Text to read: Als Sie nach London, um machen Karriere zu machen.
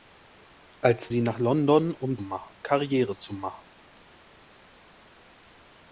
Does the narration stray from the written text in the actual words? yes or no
no